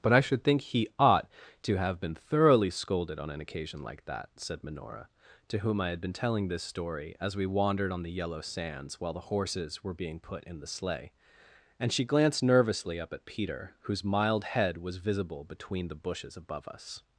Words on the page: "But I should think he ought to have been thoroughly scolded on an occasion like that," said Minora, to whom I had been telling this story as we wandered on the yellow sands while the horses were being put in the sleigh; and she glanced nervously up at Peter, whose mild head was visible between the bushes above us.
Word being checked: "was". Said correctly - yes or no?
yes